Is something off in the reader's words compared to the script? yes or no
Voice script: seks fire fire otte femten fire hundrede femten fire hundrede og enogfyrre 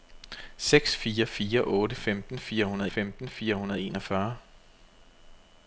no